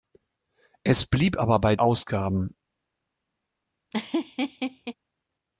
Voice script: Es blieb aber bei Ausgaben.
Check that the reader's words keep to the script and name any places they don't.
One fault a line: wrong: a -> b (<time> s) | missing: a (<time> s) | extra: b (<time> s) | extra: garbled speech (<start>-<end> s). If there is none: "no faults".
no faults